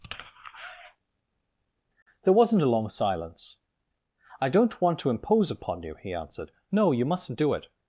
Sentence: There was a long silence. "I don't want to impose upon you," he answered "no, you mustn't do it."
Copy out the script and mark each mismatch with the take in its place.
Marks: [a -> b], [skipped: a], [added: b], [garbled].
There [was -> wasn't] a long silence. "I don't want to impose upon you," he answered "no, you mustn't do it."